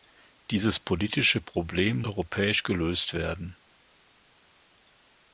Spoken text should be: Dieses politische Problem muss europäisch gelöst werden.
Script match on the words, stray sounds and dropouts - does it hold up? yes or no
no